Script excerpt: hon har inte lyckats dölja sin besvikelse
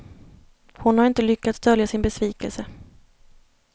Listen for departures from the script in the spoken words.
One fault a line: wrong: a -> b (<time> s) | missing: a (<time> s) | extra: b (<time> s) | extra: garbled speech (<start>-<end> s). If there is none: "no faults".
no faults